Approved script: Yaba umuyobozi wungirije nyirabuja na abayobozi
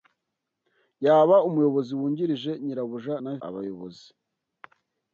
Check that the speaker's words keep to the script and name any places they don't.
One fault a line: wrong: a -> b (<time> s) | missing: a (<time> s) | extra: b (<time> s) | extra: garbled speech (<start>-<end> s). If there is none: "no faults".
no faults